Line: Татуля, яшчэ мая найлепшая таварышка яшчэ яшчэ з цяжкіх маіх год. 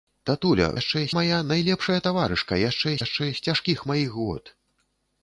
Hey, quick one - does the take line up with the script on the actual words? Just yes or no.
yes